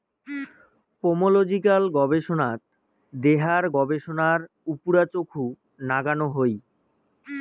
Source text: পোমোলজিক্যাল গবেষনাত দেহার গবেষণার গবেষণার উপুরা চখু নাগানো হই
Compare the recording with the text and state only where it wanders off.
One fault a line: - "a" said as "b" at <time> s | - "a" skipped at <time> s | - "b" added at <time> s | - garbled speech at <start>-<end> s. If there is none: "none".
- "গবেষণার" skipped at 4.4 s